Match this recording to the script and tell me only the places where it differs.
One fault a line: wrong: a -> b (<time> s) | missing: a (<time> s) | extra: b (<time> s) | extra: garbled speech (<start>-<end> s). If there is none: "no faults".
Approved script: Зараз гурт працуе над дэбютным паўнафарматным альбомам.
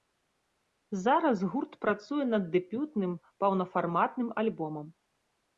no faults